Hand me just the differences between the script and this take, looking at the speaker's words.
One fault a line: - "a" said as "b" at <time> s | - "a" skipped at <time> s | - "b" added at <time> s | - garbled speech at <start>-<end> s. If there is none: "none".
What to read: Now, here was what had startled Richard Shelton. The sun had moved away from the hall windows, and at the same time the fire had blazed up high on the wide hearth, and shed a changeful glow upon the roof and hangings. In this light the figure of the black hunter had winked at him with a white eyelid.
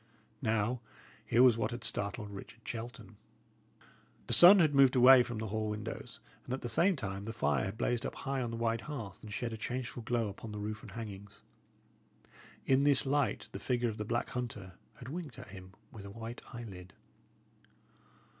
none